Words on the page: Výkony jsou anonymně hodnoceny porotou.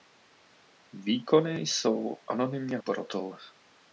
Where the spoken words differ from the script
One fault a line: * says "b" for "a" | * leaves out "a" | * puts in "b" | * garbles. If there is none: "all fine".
* leaves out "hodnoceny"